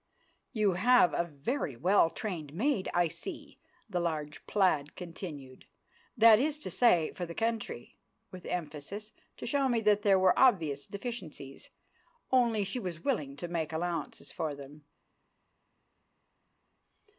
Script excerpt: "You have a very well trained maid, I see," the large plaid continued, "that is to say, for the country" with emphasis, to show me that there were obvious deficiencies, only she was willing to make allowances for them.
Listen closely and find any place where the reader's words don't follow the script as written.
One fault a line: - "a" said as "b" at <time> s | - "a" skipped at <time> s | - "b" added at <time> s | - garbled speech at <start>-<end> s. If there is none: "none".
none